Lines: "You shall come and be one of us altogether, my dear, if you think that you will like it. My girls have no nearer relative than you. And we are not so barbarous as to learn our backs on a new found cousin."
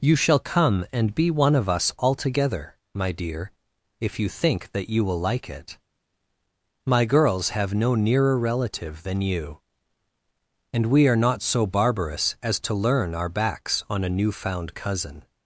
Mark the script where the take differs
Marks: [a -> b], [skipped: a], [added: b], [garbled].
"You shall come and be one of us altogether, my dear, if you think that you will like it. My girls have no nearer relative than you. And we are not so barbarous as to learn our backs on a new found cousin."